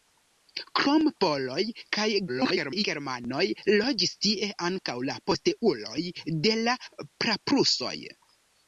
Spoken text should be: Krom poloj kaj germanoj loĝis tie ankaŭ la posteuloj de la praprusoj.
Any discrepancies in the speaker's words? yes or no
yes